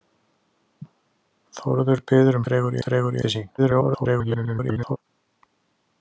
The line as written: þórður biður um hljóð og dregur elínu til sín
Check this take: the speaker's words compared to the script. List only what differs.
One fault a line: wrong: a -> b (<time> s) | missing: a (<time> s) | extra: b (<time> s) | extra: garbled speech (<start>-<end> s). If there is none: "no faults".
wrong: hljóð -> dregur (2.5 s)
missing: elínu (3.2 s)
extra: garbled speech (3.6-5.0 s)